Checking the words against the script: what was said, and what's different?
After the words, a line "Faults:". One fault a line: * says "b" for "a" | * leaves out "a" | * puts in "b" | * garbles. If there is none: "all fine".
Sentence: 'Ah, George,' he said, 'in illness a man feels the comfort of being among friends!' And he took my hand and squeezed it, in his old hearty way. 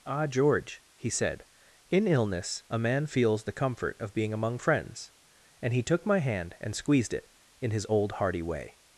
'Ah, George,' he said, 'in illness a man feels the comfort of being among friends!' And he took my hand and squeezed it, in his old hearty way.
Faults:
all fine